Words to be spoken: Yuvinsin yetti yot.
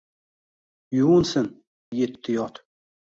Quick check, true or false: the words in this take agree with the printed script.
true